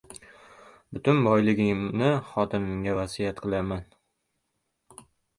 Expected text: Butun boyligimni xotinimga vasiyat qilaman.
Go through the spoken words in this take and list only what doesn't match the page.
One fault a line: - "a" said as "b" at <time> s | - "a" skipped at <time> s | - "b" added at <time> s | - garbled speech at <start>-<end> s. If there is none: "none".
none